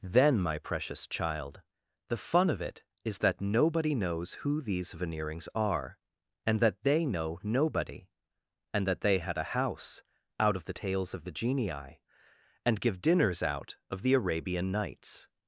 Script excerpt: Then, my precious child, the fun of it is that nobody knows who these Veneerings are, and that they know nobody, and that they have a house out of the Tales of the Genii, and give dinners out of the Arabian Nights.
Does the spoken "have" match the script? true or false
false